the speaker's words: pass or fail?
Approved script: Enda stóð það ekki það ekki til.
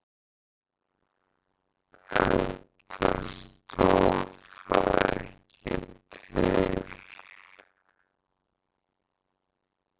fail